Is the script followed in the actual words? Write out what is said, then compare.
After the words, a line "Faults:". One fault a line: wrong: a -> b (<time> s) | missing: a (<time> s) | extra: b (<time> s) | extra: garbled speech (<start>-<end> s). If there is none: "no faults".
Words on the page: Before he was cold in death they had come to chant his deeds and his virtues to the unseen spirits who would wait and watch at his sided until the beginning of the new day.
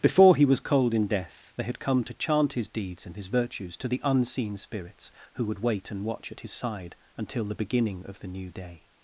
Before he was cold in death they had come to chant his deeds and his virtues to the unseen spirits who would wait and watch at his side until the beginning of the new day.
Faults:
wrong: sided -> side (6.5 s)